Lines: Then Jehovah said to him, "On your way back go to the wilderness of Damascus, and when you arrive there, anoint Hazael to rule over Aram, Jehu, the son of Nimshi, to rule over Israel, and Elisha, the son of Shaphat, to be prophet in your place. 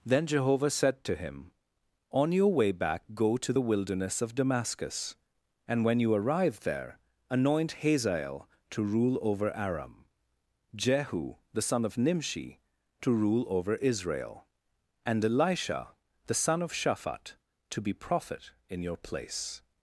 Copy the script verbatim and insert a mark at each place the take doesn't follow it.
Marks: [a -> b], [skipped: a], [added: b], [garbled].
Then Jehovah said to him, "On your way back go to the wilderness of Damascus, and when you arrive there, anoint Hazael to rule over Aram, Jehu, the son of Nimshi, to rule over Israel, and Elisha, the son of Shaphat, to be prophet in your place.